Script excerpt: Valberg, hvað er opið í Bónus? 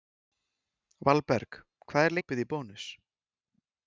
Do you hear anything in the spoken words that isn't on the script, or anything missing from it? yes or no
no